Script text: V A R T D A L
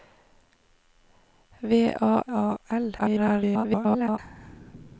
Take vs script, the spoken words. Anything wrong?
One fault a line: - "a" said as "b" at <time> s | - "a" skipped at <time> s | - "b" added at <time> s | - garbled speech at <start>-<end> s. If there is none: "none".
- "R T D" skipped at 2.2 s
- garbled speech at 3.0-4.2 s